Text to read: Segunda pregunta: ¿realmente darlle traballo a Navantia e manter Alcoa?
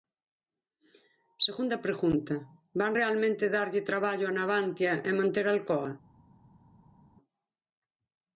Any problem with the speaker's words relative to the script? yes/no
yes